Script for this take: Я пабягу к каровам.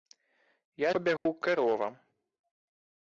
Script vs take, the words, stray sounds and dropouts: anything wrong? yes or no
yes